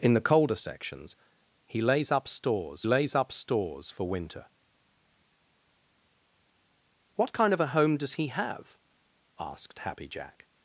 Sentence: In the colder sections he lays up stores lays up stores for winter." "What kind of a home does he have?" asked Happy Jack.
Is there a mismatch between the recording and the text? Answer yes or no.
no